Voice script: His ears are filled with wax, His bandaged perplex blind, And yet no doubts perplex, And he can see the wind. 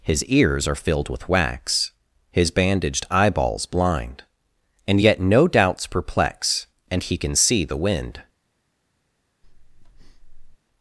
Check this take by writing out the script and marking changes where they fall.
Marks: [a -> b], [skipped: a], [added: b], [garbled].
His ears are filled with wax, His bandaged [perplex -> eyeballs] blind, And yet no doubts perplex, And he can see the wind.